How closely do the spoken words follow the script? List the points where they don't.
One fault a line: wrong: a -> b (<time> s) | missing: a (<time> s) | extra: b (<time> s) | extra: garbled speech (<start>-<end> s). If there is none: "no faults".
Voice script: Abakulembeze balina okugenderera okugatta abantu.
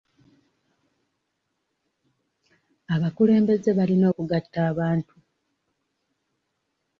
missing: okugenderera (4.0 s)